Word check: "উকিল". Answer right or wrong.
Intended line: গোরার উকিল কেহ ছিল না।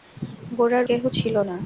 wrong